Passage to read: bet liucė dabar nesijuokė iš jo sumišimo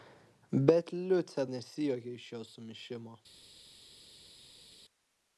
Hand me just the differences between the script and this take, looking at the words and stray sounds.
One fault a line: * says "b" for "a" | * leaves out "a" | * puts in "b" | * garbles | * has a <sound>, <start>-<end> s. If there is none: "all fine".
* leaves out "dabar"